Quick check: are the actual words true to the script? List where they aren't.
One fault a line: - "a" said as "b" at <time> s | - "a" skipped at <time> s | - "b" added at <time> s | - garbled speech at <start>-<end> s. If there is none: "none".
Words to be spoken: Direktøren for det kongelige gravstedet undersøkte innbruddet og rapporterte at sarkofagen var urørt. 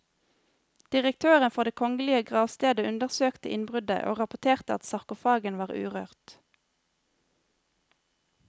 none